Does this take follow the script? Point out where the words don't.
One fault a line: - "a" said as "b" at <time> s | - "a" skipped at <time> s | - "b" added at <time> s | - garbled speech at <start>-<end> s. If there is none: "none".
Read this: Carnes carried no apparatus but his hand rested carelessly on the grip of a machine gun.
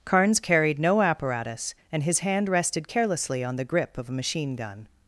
- "but" said as "and" at 1.9 s